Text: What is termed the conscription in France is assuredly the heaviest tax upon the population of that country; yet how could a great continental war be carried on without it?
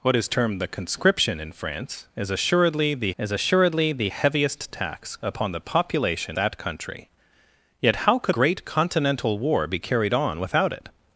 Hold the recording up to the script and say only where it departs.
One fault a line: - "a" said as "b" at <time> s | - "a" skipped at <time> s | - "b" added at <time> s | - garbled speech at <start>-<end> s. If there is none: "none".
- "is assuredly the" added at 3.2 s
- "of" skipped at 6.4 s
- "a" skipped at 8.4 s